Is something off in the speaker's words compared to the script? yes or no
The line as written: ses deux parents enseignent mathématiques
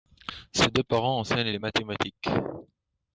yes